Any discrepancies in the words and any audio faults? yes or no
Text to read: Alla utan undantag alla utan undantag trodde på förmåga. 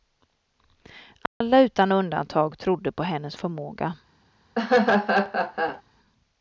yes